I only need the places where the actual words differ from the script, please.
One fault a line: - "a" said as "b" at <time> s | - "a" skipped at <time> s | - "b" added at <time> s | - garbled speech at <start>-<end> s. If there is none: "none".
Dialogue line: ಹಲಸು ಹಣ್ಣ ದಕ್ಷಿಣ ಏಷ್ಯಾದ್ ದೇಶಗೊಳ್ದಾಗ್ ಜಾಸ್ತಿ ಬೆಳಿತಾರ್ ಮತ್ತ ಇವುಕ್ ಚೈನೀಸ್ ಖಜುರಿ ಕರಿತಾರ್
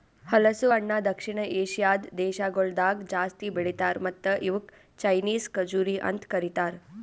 - "ಅಂತ್" added at 6.1 s